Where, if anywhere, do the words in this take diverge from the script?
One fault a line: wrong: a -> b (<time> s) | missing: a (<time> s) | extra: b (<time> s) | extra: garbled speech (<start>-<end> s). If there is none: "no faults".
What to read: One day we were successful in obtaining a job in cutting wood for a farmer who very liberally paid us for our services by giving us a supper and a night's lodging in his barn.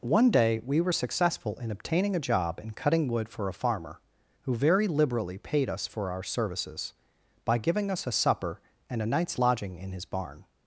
no faults